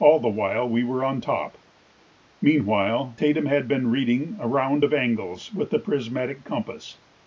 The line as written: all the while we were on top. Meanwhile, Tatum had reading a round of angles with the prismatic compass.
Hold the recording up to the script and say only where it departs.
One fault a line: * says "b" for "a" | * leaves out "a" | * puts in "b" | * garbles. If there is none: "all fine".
* puts in "been"